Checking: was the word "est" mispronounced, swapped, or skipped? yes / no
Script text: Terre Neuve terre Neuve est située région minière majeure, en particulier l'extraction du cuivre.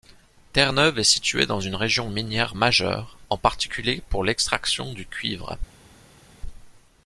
yes